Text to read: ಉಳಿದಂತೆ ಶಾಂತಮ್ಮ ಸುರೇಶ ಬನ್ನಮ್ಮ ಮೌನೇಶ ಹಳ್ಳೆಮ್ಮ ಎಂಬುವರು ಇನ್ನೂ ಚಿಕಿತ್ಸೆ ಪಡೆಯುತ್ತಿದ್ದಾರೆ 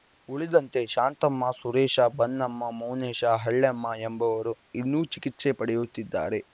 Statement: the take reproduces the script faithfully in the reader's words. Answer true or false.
true